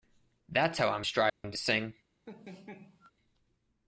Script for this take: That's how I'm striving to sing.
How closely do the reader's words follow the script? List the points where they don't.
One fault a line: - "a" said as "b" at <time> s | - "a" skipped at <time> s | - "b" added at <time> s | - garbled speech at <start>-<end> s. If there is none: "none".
none